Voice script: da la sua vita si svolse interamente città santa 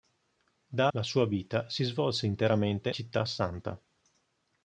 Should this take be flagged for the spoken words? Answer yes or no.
no